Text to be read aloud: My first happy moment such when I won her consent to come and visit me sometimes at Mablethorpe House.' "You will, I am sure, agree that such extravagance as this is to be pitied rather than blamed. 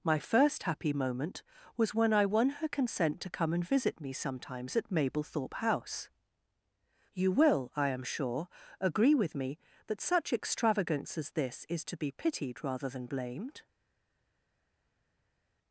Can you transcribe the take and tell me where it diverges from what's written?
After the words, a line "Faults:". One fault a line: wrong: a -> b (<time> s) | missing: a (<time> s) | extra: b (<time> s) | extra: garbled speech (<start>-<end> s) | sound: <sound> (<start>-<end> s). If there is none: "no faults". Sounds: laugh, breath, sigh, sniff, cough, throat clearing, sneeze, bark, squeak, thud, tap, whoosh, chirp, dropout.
My first happy moment was when I won her consent to come and visit me sometimes at Mablethorpe House.' "You will, I am sure, agree with me that such extravagance as this is to be pitied rather than blamed.
Faults:
wrong: such -> was (1.8 s)
extra: with me (9.1 s)